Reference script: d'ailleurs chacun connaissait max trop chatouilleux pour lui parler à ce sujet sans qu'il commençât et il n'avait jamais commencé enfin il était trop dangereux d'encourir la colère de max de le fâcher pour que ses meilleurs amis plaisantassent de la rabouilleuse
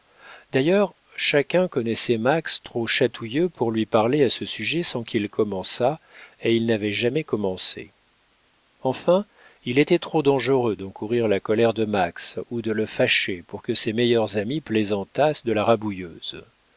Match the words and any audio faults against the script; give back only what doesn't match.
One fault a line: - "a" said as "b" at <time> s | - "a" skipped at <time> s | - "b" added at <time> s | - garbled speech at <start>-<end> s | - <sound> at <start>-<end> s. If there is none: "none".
- "ou" added at 12.5 s